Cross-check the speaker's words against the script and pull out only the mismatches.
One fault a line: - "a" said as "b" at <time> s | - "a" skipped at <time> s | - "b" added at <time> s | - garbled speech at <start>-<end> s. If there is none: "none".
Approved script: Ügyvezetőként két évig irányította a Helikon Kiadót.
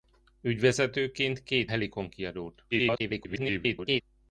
- "évig irányította a" skipped at 1.7 s
- garbled speech at 2.7-4.0 s